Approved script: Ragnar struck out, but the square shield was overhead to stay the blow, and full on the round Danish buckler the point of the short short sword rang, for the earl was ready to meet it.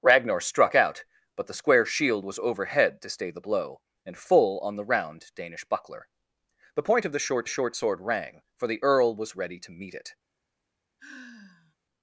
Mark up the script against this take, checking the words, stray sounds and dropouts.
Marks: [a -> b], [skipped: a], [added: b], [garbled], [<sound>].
Ragnar struck out, but the square shield was overhead to stay the blow, and full on the round Danish buckler the point of the short short sword rang, for the earl was ready to meet it. [sigh]